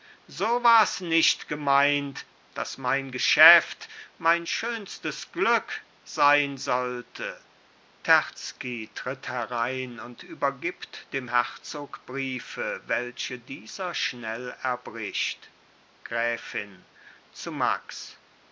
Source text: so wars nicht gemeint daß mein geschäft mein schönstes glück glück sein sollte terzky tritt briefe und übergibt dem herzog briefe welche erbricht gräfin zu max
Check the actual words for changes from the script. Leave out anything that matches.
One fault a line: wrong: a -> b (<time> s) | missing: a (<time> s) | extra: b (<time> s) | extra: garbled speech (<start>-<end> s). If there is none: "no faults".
missing: glück (5.8 s)
wrong: briefe -> herein (9.3 s)
extra: dieser schnell (13.4 s)